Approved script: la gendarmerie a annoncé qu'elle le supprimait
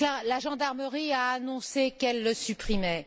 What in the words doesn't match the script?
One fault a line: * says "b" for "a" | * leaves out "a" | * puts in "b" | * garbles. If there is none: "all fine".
all fine